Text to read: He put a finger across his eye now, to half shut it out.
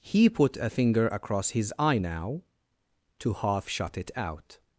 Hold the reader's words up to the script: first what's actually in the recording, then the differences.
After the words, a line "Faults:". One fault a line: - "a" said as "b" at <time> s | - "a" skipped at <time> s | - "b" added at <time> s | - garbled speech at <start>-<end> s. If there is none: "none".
He put a finger across his eye now, to half shut it out.
Faults:
none